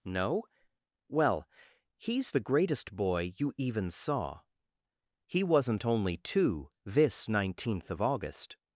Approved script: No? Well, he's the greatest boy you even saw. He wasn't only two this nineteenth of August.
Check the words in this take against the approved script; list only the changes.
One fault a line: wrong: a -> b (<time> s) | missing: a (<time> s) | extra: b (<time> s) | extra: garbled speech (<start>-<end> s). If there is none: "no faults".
no faults